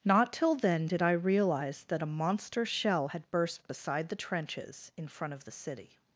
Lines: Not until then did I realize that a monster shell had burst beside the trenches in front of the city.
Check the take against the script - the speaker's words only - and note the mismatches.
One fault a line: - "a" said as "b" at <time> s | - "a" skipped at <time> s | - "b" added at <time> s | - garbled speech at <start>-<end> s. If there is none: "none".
- "until" said as "till" at 0.3 s